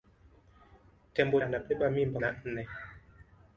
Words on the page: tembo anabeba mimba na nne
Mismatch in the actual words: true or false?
false